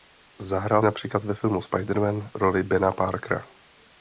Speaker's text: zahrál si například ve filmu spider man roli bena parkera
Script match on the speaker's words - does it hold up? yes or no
no